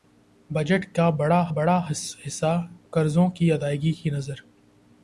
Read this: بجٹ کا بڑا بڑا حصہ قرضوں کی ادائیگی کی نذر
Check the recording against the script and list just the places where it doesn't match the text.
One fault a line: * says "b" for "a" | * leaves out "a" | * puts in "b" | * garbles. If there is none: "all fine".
all fine